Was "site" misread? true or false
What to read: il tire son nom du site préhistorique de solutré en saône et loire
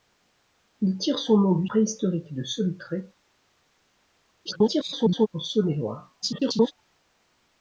true